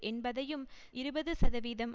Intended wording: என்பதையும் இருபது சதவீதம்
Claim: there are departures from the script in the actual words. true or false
false